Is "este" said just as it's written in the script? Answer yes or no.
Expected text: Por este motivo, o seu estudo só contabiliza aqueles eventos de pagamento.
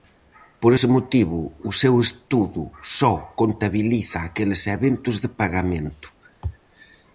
no